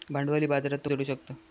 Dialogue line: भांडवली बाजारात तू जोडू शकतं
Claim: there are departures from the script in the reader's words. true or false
false